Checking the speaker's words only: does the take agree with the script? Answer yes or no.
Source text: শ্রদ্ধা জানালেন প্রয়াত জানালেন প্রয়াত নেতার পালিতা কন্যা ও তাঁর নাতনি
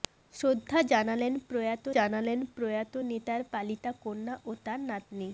yes